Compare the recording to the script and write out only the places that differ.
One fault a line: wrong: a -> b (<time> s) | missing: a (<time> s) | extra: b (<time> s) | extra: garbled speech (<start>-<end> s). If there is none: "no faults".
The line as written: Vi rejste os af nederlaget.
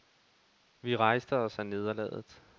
no faults